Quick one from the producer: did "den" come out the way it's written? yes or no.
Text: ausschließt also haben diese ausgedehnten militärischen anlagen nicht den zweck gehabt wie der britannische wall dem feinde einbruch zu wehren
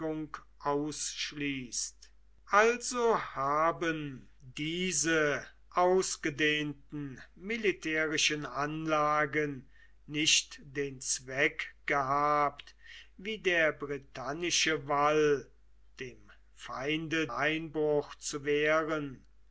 yes